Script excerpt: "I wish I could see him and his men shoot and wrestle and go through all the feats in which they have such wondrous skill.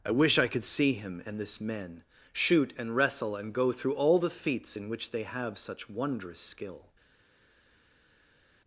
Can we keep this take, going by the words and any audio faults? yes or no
no